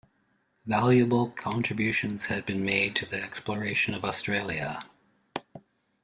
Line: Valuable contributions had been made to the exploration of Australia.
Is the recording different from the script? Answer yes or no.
no